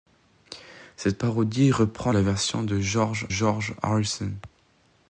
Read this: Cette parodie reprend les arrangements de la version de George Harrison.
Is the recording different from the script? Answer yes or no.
yes